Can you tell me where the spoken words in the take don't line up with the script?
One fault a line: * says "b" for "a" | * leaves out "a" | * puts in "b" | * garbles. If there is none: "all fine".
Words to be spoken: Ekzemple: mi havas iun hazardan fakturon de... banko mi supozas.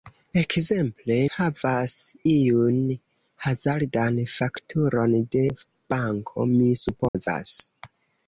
* leaves out "mi"